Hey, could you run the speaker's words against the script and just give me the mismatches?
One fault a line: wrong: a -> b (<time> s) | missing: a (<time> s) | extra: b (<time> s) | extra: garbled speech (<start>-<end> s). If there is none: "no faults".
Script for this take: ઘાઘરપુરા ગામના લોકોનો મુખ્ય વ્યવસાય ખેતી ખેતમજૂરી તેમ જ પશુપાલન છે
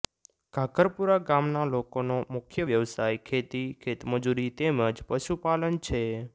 no faults